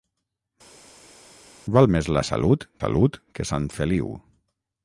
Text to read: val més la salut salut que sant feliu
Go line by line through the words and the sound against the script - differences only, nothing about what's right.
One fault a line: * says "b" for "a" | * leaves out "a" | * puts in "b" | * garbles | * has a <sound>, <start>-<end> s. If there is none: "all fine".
all fine